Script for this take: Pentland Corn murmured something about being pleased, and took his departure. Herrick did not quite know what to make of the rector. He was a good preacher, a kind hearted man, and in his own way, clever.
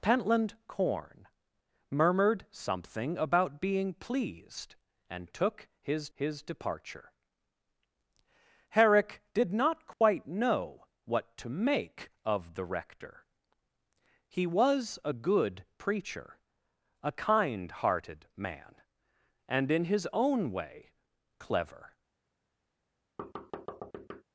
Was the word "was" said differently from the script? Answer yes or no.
no